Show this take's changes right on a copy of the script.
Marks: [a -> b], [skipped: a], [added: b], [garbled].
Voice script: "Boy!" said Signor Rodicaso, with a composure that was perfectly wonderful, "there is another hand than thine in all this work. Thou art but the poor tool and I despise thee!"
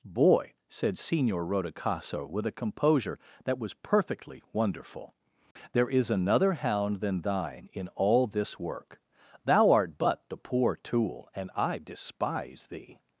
"Boy!" said Signor Rodicaso, with a composure that was perfectly wonderful, "there is another [hand -> hound] than thine in all this work. Thou art but the poor tool and I despise thee!"